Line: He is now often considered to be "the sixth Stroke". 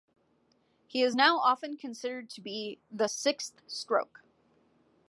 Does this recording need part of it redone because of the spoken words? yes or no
no